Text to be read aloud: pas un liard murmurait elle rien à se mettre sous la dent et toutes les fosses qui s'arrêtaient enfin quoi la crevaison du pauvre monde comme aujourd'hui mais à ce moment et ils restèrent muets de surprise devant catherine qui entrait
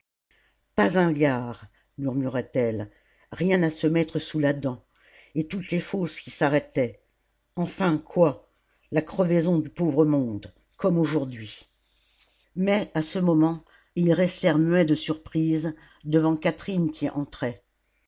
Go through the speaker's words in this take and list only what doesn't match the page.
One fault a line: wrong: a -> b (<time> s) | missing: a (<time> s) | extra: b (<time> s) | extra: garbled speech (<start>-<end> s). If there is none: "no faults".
no faults